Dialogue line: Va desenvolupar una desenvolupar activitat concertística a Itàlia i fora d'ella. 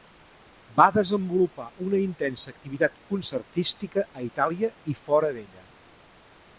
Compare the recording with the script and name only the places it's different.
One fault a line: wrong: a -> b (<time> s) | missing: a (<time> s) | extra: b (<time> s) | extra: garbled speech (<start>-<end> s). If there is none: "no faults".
wrong: desenvolupar -> intensa (2.0 s)